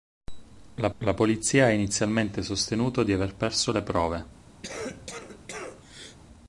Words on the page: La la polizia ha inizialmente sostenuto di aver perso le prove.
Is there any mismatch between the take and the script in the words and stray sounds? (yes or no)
yes